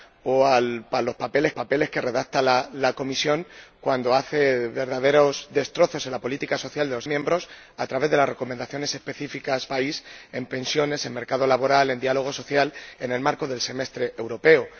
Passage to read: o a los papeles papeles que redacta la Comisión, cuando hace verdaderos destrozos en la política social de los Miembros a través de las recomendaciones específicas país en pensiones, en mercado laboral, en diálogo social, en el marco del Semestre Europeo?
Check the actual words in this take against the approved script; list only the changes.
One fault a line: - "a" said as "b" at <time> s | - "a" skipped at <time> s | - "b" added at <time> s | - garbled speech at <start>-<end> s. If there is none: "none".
none